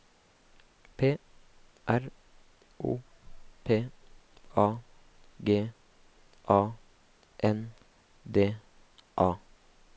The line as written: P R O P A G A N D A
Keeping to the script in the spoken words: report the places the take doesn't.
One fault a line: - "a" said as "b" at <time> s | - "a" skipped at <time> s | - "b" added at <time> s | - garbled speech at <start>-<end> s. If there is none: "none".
none